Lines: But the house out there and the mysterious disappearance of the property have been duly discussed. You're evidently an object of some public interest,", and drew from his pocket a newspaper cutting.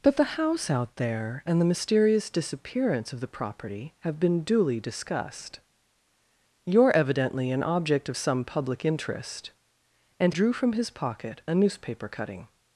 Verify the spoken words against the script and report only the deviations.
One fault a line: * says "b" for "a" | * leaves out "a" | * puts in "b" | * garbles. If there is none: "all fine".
all fine